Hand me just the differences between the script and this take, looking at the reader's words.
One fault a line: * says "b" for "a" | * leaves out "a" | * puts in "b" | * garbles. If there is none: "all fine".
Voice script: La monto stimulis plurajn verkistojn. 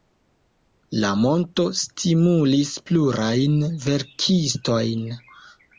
all fine